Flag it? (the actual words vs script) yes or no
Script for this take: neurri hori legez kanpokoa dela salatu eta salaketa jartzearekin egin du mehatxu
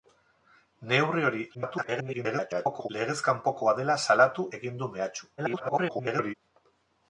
yes